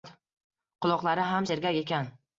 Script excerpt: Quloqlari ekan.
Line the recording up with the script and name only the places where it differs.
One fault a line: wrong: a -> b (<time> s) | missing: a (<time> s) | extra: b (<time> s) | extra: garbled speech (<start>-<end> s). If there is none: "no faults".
extra: ham sergak (1.3 s)